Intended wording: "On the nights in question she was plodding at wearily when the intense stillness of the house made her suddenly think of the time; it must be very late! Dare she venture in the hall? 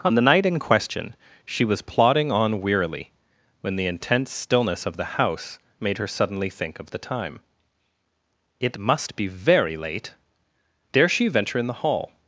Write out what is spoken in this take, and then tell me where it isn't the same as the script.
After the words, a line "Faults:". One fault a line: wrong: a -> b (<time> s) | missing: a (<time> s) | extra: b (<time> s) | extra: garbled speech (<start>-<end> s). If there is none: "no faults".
"On the night in question she was plodding on wearily when the intense stillness of the house made her suddenly think of the time; it must be very late! Dare she venture in the hall?
Faults:
wrong: nights -> night (0.2 s)
wrong: at -> on (2.3 s)